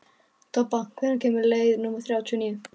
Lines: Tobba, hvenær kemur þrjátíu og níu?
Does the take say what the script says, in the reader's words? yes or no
no